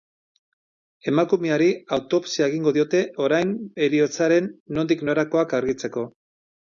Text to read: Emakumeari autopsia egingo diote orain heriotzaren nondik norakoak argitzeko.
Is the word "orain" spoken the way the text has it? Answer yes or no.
yes